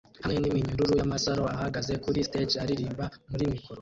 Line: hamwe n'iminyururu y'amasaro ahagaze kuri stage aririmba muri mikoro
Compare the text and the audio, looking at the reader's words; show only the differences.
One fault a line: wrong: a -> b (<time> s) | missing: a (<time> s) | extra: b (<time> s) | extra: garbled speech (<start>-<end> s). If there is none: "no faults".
no faults